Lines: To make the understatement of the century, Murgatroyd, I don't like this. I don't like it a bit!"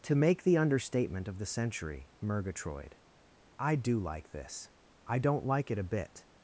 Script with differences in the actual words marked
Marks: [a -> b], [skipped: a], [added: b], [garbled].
To make the understatement of the century, Murgatroyd, I [don't -> do] like this. I don't like it a bit!"